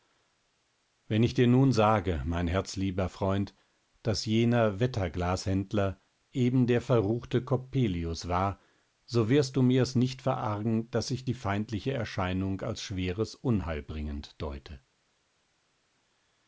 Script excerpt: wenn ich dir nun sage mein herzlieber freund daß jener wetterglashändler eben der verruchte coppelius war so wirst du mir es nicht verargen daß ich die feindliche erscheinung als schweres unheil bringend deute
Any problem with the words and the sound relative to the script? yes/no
no